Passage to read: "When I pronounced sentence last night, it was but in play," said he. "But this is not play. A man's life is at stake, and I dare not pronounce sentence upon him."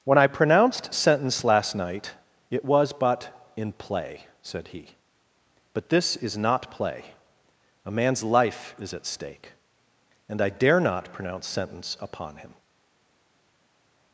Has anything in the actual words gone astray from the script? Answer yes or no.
no